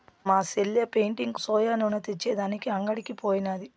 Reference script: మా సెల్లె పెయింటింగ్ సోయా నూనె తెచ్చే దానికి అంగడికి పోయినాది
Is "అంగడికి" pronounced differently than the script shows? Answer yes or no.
no